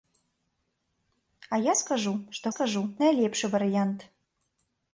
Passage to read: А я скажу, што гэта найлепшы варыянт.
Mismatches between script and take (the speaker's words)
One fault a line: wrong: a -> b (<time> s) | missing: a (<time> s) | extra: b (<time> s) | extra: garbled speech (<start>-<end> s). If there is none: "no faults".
wrong: гэта -> скажу (2.5 s)